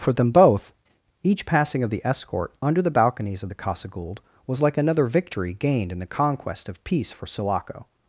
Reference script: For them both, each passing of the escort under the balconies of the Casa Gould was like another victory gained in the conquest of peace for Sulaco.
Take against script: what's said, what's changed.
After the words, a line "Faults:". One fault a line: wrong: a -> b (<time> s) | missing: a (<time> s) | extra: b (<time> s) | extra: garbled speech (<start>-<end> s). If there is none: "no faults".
For them both, each passing of the escort under the balconies of the Casa Gould was like another victory gained in the conquest of peace for Sulaco.
Faults:
no faults